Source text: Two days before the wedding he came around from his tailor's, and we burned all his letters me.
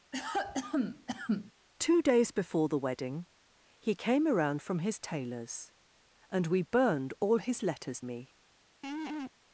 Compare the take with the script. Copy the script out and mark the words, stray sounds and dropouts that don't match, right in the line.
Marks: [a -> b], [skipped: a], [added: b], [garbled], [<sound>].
[cough] Two days before the wedding he came around from his tailor's, and we burned all his letters me. [laugh]